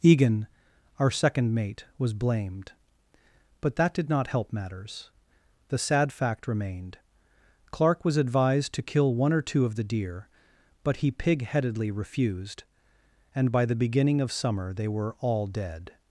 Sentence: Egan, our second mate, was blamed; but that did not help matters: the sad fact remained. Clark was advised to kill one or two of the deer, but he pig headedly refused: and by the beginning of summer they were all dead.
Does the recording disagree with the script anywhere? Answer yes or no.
no